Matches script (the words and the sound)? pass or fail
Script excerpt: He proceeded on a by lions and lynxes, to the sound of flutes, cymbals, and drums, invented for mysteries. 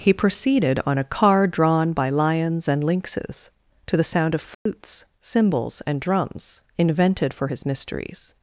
fail